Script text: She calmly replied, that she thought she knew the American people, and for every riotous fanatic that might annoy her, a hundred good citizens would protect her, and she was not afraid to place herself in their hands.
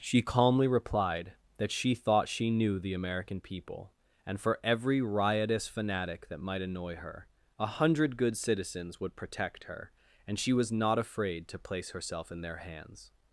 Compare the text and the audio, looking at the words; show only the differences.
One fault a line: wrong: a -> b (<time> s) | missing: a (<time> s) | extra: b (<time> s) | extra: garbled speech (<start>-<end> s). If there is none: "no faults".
no faults